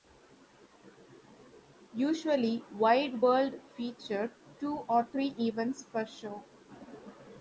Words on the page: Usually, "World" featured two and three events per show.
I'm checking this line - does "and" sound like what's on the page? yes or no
no